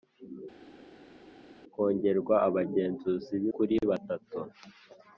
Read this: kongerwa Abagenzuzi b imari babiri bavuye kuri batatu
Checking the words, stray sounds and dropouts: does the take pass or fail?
fail